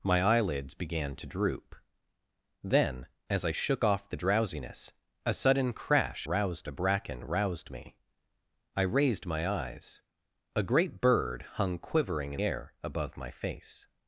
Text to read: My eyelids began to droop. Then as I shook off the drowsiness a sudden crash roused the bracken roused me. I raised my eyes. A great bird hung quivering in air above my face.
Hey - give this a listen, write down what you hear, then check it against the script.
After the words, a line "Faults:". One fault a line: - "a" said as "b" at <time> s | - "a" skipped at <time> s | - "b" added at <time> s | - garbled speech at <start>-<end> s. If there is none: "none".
My eyelids began to droop. Then as I shook off the drowsiness a sudden crash roused the bracken roused me. I raised my eyes. A great bird hung quivering in air above my face.
Faults:
none